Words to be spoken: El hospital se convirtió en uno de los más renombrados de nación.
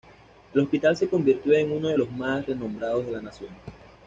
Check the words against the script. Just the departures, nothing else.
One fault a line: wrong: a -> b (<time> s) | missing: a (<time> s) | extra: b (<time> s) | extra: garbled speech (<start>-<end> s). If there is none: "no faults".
extra: la (3.1 s)